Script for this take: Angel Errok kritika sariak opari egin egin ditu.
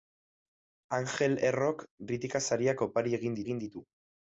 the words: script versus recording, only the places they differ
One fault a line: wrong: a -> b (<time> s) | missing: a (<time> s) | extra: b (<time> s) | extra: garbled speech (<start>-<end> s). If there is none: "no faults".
no faults